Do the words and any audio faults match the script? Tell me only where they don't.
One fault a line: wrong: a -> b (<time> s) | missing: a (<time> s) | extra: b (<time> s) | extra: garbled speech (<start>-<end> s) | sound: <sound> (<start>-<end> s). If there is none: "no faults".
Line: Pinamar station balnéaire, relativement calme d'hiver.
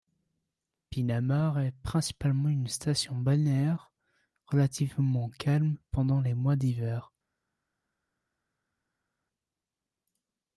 extra: est principalement une (1.6 s)
extra: pendant les mois (5.9 s)